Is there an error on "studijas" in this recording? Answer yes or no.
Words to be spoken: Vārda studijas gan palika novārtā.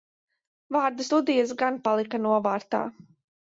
no